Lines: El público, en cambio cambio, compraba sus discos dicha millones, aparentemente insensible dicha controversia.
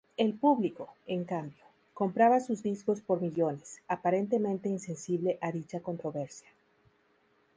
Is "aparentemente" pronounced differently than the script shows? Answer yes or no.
no